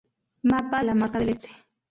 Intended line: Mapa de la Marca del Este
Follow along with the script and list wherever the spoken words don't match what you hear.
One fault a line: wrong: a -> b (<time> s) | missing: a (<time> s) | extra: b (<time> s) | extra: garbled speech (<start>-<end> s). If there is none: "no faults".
missing: de (0.8 s)